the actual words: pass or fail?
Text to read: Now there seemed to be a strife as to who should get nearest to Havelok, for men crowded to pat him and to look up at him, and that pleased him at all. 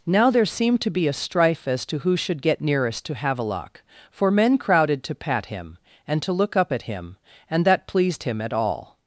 pass